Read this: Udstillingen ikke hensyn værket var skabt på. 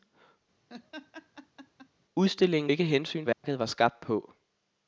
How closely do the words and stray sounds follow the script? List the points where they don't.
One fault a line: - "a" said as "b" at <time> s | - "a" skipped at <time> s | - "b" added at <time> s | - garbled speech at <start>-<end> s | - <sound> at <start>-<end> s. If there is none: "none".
- laugh at 0.7-1.9 s
- dropout at 3.3-3.4 s